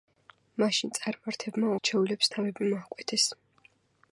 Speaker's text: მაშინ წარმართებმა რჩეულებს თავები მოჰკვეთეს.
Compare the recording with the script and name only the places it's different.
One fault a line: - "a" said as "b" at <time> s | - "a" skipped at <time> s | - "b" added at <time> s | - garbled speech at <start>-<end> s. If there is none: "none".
none